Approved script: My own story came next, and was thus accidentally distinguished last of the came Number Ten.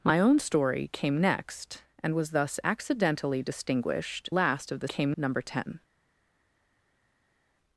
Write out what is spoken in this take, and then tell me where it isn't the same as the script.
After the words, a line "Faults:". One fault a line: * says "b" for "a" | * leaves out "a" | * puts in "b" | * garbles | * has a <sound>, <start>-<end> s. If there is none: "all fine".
My own story came next, and was thus accidentally distinguished last of the came Number Ten.
Faults:
all fine